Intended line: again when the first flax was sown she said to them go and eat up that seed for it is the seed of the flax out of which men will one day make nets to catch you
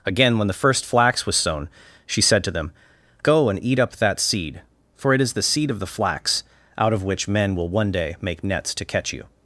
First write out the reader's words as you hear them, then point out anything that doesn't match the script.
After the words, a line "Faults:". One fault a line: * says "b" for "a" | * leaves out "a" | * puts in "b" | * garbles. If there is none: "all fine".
again when the first flax was sown she said to them go and eat up that seed for it is the seed of the flax out of which men will one day make nets to catch you
Faults:
all fine